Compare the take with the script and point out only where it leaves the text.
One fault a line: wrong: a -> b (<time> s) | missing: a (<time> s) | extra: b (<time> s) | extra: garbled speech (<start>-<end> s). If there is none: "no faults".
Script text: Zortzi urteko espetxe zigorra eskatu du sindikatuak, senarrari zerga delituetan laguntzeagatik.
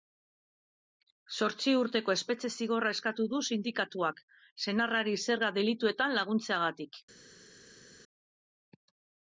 no faults